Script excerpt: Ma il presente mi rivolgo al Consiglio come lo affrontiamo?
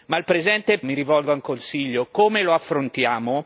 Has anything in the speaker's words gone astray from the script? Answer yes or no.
no